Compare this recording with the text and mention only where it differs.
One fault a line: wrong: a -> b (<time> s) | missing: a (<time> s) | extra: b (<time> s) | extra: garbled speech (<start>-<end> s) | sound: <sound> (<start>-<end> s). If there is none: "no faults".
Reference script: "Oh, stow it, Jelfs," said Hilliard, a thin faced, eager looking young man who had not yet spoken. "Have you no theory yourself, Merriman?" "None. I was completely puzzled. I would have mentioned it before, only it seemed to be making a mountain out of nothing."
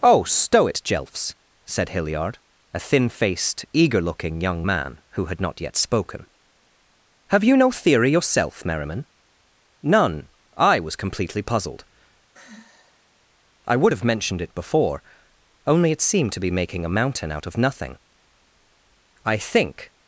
sound: sigh (12.3-13.1 s)
extra: I think (19.3 s)